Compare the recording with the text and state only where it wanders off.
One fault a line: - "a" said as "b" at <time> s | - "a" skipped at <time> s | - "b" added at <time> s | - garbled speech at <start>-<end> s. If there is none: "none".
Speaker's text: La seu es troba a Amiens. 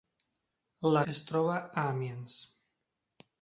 - "seu" skipped at 1.0 s